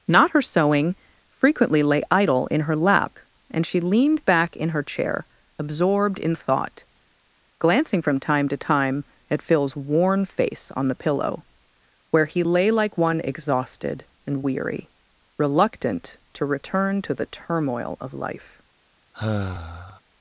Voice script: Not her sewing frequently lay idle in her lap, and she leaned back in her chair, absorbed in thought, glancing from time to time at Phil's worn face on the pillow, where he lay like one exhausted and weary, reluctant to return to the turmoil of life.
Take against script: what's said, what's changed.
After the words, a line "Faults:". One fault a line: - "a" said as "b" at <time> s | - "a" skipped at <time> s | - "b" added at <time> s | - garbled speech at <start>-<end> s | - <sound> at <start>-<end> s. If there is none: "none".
Not her sewing frequently lay idle in her lap, and she leaned back in her chair, absorbed in thought, glancing from time to time at Phil's worn face on the pillow, where he lay like one exhausted and weary, reluctant to return to the turmoil of life.
Faults:
- sigh at 19.1-20.0 s